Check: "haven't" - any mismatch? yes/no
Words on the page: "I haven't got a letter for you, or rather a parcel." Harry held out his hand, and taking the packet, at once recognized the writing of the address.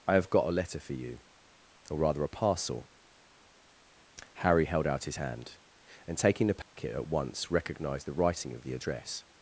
yes